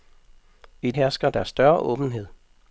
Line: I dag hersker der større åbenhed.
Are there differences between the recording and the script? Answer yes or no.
yes